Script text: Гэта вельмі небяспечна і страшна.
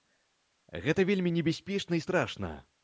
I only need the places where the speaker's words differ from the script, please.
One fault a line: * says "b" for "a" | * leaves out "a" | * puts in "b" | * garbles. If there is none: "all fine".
all fine